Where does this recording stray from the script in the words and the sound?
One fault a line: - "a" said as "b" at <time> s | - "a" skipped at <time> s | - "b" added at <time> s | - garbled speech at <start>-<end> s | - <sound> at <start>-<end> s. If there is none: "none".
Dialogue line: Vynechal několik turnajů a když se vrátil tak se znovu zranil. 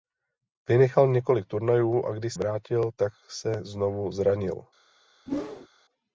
- "se" skipped at 2.3 s
- whoosh at 5.3-5.7 s